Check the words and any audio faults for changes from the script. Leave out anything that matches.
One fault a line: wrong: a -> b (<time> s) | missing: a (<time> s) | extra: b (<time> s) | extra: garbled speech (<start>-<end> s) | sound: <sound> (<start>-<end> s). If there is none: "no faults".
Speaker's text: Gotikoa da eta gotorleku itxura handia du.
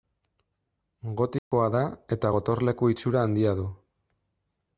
sound: dropout (1.4-1.5 s)